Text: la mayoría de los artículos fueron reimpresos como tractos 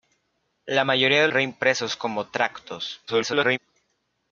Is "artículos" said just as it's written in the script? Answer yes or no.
no